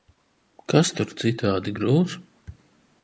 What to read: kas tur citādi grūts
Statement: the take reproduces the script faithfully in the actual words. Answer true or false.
true